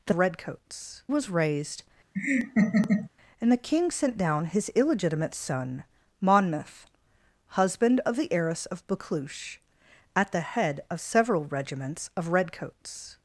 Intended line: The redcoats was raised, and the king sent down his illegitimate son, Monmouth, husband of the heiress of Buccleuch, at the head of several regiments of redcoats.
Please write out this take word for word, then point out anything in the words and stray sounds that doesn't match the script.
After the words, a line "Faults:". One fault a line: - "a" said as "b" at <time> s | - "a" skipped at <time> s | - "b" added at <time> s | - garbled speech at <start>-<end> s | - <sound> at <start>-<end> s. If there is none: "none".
The redcoats was raised, and the king sent down his illegitimate son, Monmouth, husband of the heiress of Buccleuch, at the head of several regiments of redcoats.
Faults:
- laugh at 2.1-3.1 s